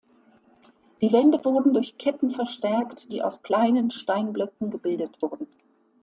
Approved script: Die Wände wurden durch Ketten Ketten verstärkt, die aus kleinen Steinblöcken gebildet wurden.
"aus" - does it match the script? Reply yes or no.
yes